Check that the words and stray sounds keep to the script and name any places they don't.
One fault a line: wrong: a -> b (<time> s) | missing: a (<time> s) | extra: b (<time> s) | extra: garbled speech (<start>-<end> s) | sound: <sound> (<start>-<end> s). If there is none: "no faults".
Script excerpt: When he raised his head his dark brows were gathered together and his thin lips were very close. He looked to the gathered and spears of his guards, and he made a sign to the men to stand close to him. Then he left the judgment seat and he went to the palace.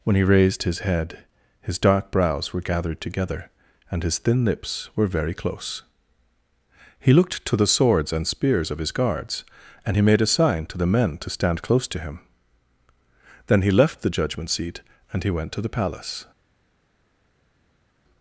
wrong: gathered -> swords (7.7 s)